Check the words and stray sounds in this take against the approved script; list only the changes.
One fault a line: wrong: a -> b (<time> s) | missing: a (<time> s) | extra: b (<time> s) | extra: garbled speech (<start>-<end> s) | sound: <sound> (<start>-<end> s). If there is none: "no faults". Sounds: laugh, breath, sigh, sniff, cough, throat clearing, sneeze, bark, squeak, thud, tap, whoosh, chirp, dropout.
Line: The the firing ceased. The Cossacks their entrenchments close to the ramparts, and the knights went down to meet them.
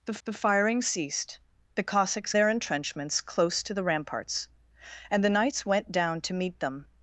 no faults